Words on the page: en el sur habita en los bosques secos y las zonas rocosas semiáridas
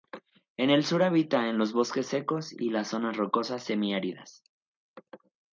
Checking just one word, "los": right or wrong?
right